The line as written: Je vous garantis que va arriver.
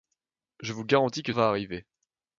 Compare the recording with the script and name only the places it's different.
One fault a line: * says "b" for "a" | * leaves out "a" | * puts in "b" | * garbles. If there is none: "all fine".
all fine